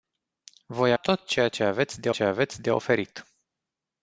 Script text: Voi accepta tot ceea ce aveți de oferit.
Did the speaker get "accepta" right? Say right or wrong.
wrong